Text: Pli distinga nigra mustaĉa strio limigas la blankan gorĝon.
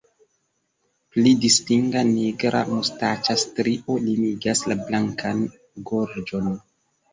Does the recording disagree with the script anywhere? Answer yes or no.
no